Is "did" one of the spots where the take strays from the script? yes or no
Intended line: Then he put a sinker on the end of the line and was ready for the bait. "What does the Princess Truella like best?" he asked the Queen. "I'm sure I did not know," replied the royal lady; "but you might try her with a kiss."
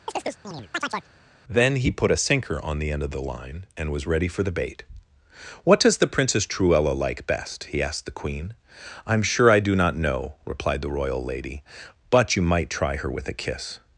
yes